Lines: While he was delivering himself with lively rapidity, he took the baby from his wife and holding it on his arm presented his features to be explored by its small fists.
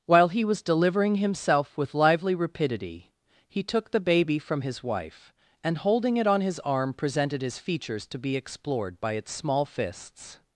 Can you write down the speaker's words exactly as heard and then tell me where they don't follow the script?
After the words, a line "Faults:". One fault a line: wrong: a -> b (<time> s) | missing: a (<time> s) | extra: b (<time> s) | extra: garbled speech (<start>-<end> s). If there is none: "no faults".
While he was delivering himself with lively rapidity, he took the baby from his wife and holding it on his arm presented his features to be explored by its small fists.
Faults:
no faults